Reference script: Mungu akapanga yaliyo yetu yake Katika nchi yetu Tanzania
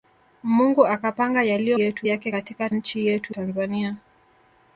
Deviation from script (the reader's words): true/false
false